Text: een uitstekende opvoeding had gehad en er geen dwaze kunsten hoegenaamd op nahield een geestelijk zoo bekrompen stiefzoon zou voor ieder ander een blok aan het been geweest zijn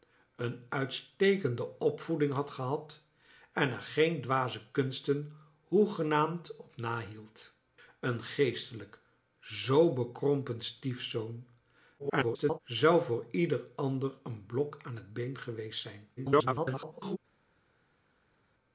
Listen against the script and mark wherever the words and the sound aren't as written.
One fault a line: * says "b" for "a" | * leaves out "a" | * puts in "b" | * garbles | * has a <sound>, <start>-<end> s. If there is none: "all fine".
* garbles
* garbles